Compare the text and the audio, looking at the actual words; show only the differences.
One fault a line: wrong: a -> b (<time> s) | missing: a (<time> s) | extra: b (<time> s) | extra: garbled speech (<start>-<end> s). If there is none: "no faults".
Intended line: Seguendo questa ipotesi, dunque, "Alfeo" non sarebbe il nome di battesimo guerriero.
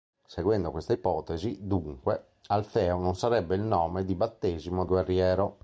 no faults